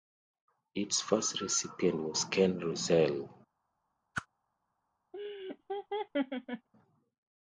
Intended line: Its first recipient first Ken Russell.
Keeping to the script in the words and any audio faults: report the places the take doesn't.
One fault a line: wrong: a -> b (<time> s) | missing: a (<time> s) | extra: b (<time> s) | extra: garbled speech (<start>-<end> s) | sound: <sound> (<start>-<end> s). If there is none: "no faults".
wrong: first -> was (2.0 s)
sound: whoosh (4.1-4.3 s)
sound: laugh (5.1-6.7 s)